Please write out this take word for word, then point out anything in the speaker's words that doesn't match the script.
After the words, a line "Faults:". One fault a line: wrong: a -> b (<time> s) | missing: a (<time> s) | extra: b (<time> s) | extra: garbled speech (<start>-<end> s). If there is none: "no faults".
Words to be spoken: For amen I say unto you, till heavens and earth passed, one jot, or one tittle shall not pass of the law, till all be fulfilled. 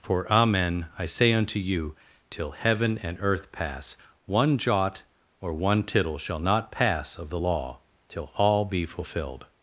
For amen I say unto you, till heaven and earth pass, one jot, or one tittle shall not pass of the law, till all be fulfilled.
Faults:
wrong: heavens -> heaven (2.5 s)
wrong: passed -> pass (3.5 s)